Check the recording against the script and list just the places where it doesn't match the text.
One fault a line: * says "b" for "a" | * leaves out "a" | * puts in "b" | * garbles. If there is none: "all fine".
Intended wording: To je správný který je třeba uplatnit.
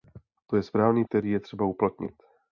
all fine